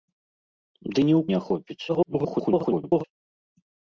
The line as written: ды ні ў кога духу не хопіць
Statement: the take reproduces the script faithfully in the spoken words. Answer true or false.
false